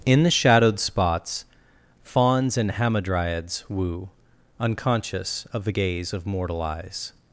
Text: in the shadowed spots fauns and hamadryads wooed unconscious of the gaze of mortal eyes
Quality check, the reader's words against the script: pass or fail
fail